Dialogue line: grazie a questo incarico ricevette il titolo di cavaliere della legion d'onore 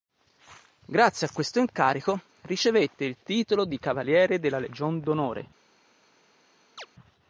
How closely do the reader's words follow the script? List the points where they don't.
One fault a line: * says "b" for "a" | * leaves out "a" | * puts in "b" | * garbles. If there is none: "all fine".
all fine